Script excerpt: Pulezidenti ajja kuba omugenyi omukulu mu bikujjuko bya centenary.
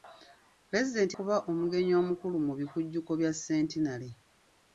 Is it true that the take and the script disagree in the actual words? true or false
true